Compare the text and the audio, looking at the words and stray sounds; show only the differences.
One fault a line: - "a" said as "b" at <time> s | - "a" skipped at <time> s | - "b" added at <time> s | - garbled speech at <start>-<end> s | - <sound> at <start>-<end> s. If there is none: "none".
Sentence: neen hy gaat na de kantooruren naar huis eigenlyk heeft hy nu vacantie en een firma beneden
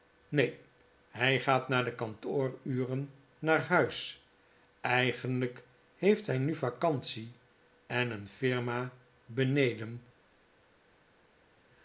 none